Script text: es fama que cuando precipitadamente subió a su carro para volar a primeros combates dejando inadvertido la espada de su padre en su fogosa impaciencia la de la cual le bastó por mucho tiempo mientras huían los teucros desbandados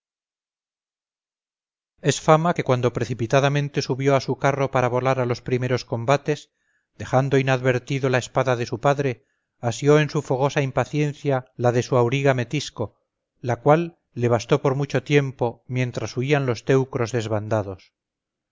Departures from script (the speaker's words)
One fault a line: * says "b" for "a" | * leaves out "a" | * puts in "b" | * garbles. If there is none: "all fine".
* puts in "los"
* puts in "asió"
* puts in "su auriga metisco"